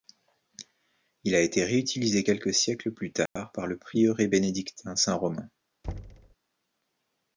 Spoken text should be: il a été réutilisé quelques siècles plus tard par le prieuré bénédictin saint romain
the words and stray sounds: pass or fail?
fail